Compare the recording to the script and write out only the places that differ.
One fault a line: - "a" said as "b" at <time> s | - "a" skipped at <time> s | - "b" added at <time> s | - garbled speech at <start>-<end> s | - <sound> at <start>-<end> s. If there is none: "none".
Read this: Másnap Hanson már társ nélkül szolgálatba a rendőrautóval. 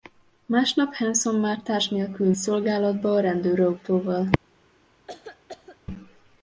- cough at 5.1-5.8 s